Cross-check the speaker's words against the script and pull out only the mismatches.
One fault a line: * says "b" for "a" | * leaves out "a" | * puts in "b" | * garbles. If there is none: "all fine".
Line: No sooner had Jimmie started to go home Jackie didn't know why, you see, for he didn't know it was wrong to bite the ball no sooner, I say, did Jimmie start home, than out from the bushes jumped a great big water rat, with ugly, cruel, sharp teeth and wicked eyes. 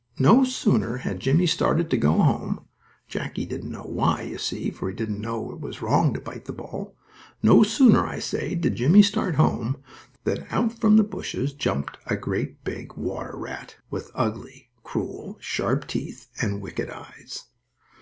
all fine